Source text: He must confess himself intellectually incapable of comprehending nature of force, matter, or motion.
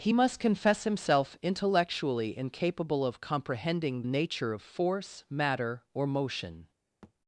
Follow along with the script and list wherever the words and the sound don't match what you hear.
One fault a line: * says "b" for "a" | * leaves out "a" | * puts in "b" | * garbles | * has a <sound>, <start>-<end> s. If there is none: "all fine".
* has a thud, 7.0-7.1 s